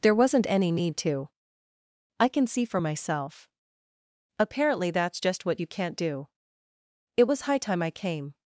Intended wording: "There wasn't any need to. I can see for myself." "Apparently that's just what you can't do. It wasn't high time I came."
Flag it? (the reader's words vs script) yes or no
yes